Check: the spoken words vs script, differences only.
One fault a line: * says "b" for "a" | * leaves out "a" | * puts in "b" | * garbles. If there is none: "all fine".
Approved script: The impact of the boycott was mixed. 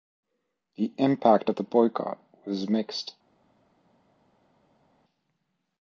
all fine